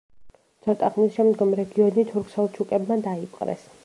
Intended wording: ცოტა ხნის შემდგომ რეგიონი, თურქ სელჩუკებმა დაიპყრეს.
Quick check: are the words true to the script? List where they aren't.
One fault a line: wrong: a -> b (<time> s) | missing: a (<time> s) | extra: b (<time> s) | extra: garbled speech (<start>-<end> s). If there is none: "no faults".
no faults